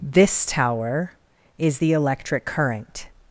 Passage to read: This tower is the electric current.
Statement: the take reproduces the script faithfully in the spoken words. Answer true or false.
true